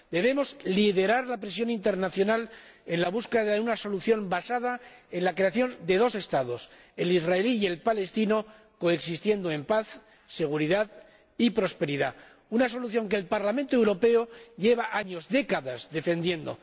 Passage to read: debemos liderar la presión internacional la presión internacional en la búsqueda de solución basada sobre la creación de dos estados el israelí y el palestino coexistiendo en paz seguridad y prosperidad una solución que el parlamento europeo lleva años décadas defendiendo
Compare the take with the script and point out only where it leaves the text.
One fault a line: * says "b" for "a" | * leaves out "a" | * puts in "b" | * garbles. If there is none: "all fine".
* leaves out "la presión internacional"
* puts in "una"
* says "en" for "sobre"